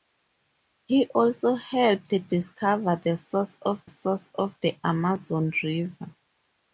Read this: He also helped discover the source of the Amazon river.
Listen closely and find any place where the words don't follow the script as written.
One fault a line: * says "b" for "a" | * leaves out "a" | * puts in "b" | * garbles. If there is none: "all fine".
* puts in "source of"